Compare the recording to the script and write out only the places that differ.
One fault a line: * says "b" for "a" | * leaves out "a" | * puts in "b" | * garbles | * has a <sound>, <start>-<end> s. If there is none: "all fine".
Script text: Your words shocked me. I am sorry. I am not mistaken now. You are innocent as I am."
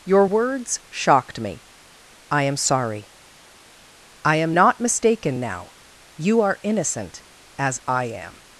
all fine